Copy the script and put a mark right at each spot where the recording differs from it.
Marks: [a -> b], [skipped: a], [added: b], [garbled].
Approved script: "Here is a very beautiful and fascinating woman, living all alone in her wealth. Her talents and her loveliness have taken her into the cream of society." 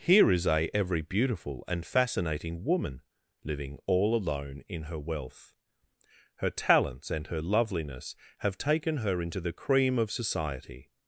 "Here is a [very -> every] beautiful and fascinating woman, living all alone in her wealth. Her talents and her loveliness have taken her into the cream of society."